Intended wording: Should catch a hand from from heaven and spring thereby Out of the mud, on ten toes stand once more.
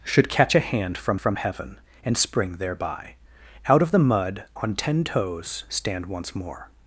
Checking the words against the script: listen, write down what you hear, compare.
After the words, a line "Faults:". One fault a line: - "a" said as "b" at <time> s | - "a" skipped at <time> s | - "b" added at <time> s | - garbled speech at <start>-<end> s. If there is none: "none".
Should catch a hand from from heaven and spring thereby Out of the mud, on ten toes stand once more.
Faults:
none